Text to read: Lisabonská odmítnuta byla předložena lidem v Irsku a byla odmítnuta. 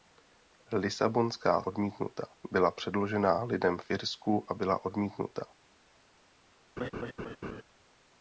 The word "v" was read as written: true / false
true